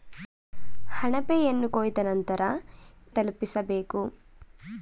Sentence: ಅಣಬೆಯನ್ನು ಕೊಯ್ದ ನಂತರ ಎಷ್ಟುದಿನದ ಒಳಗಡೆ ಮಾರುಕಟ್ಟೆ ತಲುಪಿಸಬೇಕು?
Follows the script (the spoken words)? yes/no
no